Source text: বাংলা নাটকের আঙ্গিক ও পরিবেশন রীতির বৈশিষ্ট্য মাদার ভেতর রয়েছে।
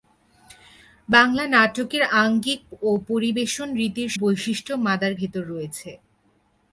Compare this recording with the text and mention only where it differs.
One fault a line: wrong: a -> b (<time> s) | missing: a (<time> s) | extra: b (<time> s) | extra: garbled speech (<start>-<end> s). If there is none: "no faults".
no faults